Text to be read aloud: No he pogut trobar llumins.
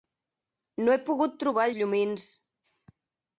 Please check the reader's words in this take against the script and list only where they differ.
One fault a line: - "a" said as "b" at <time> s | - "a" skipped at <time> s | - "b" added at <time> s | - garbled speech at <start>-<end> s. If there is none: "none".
none